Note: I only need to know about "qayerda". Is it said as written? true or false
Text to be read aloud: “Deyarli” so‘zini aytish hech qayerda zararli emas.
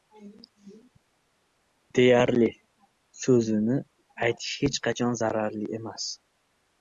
false